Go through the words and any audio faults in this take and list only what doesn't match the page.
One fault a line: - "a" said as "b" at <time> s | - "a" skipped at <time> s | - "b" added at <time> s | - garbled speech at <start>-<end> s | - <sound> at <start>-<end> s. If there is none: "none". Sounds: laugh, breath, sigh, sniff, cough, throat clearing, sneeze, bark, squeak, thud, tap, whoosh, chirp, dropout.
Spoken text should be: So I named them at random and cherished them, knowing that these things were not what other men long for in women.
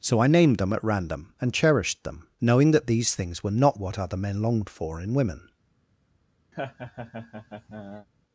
- "long" said as "longed" at 4.4 s
- laugh at 6.5-8.1 s